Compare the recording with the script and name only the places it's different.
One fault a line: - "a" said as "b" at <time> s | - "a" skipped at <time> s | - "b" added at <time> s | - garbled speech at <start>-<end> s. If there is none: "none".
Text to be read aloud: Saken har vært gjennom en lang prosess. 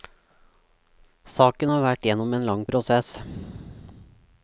none